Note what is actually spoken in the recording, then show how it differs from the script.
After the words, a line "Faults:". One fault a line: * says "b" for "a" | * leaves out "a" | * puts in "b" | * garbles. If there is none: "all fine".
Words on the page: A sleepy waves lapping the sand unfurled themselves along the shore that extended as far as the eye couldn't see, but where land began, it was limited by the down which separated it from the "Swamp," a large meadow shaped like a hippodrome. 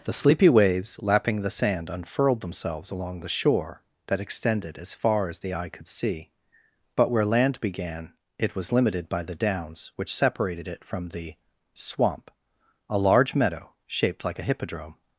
The sleepy waves lapping the sand unfurled themselves along the shore that extended as far as the eye could see, but where land began, it was limited by the downs which separated it from the "Swamp," a large meadow shaped like a hippodrome.
Faults:
* says "The" for "A"
* says "could" for "couldn't"
* says "downs" for "down"